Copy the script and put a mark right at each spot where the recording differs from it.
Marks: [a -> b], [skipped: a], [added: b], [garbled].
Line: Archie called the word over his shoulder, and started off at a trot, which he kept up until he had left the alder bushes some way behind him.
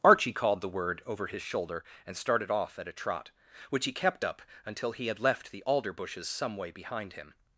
Archie called the word over his shoulder, and started off at a trot, which he kept up until he had left the alder bushes some way behind him.